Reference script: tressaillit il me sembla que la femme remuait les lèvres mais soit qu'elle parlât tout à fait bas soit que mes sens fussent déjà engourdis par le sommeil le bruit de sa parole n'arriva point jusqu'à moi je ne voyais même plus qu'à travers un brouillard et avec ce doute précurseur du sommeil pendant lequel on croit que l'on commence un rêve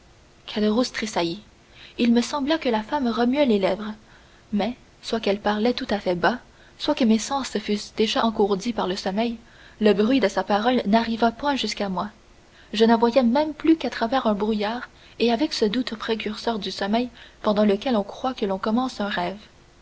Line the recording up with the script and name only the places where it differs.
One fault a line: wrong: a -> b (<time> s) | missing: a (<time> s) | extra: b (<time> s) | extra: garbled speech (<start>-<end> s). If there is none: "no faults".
no faults